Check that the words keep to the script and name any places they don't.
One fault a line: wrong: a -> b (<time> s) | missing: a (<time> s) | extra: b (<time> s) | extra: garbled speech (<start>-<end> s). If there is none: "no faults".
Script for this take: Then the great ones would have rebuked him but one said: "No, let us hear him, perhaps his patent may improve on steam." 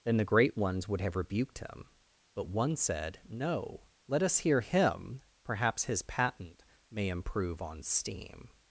no faults